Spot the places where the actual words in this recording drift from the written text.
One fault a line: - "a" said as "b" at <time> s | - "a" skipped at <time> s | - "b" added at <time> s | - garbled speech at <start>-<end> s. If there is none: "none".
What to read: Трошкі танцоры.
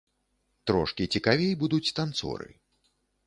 - "цікавей будуць" added at 1.2 s